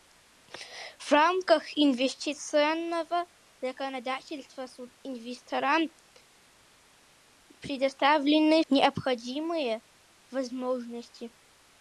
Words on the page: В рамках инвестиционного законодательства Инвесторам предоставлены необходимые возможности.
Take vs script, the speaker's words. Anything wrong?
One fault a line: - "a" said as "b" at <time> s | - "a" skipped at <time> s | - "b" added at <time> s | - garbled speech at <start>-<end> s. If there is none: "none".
none